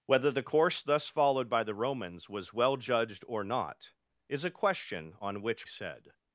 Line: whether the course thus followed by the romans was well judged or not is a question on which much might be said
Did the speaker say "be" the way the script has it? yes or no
no